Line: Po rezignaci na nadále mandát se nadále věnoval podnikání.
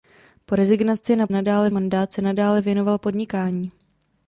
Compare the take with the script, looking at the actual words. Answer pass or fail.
pass